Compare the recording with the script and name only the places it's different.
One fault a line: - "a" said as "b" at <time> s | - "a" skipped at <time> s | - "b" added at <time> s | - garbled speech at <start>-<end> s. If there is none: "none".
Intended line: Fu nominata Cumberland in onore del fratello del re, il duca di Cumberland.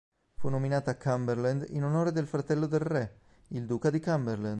none